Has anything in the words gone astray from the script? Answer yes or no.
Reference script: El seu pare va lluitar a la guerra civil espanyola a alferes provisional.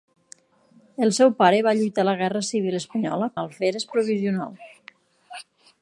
no